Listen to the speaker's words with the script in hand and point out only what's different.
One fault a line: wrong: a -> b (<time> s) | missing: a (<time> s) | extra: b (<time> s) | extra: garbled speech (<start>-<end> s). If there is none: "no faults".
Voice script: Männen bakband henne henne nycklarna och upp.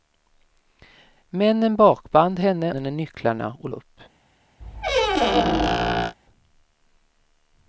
no faults